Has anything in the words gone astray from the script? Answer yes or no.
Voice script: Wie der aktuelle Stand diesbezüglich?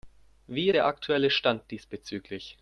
no